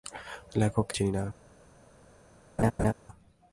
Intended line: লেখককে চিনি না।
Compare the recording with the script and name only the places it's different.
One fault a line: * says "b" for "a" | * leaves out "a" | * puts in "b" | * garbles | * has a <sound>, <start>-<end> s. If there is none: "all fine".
* has a laugh, 2.6-2.9 s